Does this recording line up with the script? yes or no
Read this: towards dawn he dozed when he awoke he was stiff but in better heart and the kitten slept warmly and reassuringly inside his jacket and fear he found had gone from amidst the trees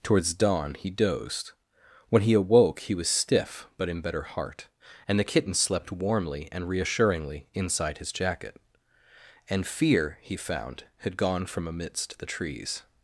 yes